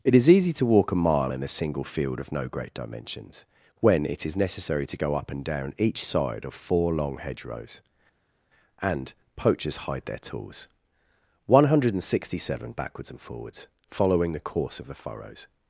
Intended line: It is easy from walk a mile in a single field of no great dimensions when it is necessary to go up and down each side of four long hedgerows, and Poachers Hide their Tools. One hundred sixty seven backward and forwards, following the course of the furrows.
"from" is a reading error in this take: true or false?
true